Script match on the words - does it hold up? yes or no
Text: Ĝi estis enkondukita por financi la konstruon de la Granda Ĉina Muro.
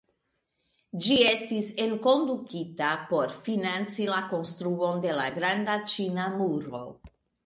yes